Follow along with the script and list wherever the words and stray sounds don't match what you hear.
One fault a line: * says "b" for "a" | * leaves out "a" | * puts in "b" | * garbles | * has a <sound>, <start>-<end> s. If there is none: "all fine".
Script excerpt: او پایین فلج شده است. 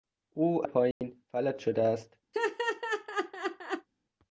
* has a dropout, 0.9-1.0 s
* has a laugh, 2.3-3.9 s